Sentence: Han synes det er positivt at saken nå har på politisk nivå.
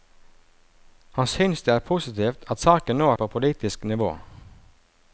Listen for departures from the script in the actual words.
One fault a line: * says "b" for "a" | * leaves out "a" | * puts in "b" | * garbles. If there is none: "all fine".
all fine